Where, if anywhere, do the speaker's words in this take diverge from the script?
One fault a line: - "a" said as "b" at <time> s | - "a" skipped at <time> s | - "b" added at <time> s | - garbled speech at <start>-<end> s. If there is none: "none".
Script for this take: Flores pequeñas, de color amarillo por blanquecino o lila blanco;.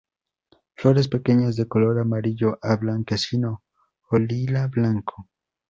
- "por" said as "a" at 2.6 s